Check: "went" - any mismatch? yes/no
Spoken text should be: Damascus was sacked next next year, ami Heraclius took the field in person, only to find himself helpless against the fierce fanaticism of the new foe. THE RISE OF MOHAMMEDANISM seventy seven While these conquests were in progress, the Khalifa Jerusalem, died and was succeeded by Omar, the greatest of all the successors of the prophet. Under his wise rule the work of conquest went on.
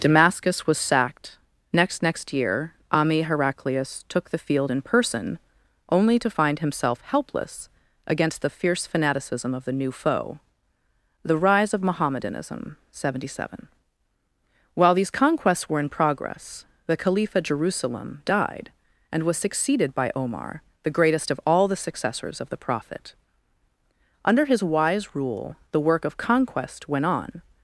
no